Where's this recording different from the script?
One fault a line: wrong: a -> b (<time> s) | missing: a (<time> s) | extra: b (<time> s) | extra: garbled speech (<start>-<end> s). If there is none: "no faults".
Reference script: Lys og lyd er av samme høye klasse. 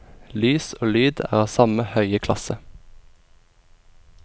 no faults